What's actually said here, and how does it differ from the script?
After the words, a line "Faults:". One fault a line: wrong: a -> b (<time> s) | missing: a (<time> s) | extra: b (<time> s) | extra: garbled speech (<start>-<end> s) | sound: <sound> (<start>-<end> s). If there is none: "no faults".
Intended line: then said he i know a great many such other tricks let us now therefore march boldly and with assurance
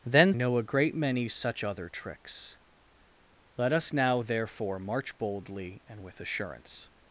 then know a great many such other tricks let us now therefore march boldly and with assurance
Faults:
missing: said he i (0.3 s)